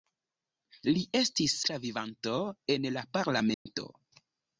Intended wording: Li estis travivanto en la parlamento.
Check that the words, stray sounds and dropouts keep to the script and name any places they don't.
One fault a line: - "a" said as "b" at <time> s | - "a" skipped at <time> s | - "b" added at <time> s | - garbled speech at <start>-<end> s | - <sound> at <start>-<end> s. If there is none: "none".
- dropout at 3.5-3.7 s